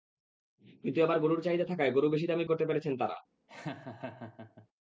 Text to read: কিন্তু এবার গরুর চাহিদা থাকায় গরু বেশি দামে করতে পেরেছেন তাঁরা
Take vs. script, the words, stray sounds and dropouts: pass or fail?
fail